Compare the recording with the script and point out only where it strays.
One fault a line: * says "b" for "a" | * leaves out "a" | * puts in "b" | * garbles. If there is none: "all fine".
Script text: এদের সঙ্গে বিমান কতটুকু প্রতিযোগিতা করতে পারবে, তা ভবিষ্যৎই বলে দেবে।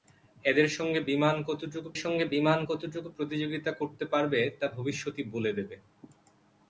* puts in "সঙ্গে বিমান কতটুকু"